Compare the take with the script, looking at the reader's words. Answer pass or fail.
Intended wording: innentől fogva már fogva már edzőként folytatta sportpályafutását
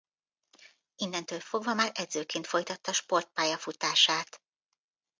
fail